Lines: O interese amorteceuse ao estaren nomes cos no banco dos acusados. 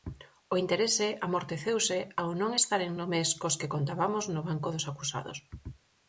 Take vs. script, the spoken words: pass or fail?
fail